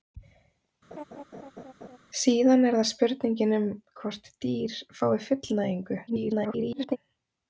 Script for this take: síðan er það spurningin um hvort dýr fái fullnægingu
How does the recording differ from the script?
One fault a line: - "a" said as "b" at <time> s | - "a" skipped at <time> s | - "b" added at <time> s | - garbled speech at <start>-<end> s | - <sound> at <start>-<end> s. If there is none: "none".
- laugh at 0.9-2.0 s
- garbled speech at 6.1-7.0 s